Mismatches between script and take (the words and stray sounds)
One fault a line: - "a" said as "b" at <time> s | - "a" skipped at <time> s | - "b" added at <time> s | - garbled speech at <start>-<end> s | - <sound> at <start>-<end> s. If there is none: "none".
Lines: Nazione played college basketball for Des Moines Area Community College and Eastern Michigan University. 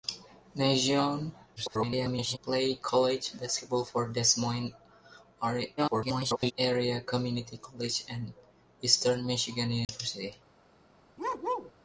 - garbled speech at 1.6-2.4 s
- garbled speech at 5.8-6.5 s
- dropout at 9.8-9.9 s
- bark at 11.2-11.7 s